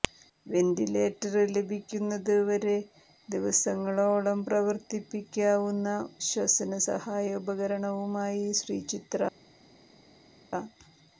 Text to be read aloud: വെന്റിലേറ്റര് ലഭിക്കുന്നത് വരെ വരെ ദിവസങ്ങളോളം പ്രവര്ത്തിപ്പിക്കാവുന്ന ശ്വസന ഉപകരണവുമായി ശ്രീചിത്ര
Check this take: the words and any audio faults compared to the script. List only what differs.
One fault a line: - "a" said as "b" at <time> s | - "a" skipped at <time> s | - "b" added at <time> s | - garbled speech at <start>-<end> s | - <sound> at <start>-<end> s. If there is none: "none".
- "വരെ" skipped at 2.8 s
- "സഹായ" added at 6.9 s